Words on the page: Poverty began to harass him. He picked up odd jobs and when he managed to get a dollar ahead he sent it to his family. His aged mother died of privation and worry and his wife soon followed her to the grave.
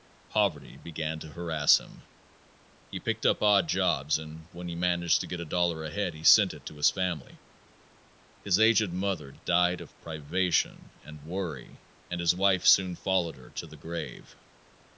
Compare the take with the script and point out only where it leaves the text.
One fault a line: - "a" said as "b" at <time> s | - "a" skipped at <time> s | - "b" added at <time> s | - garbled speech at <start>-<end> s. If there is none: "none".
none